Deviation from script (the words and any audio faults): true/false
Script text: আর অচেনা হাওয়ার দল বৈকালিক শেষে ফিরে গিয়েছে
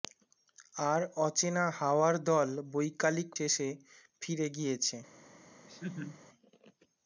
true